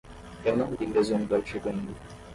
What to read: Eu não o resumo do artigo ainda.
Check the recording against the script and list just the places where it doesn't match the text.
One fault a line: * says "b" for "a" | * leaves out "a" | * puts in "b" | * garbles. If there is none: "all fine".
* puts in "li"